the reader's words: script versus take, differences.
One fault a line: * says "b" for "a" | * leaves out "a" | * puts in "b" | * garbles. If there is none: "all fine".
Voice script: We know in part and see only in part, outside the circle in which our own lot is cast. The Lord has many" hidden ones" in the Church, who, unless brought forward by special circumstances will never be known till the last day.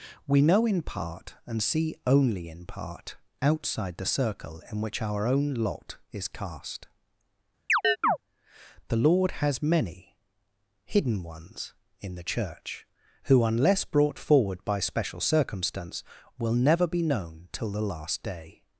* says "circumstance" for "circumstances"